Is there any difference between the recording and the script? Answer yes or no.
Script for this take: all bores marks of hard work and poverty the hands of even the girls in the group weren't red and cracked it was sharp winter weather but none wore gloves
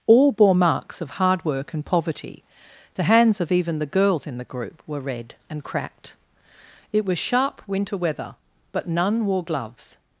yes